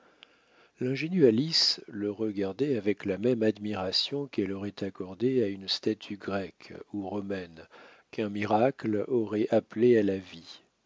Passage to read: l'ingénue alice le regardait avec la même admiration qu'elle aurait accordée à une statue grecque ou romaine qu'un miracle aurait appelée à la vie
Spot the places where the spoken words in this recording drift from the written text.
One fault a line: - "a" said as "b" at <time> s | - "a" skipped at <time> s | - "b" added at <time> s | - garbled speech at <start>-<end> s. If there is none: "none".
none